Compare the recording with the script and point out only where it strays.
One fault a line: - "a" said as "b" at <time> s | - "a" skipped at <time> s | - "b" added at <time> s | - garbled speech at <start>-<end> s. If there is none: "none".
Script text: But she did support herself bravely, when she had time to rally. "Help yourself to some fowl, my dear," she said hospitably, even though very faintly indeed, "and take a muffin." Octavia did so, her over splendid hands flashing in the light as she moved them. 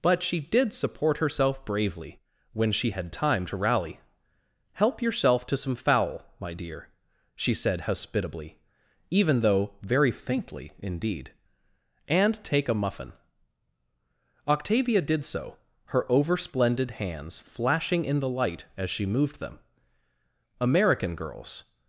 - "American girls" added at 20.6 s